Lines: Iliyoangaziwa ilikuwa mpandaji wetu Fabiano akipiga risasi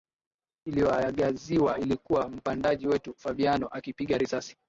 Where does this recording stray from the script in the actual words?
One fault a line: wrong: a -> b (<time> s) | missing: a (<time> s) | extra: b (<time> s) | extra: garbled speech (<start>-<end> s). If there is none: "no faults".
no faults